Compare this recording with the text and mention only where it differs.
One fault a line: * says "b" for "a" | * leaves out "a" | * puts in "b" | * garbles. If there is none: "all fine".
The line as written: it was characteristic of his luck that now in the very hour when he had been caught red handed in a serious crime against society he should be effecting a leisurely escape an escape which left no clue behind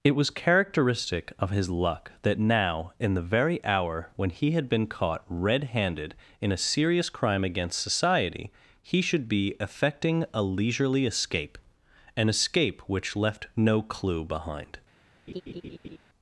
all fine